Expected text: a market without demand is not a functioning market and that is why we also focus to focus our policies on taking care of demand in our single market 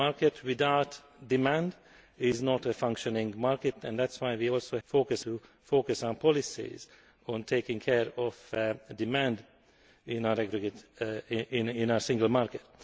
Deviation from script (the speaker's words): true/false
false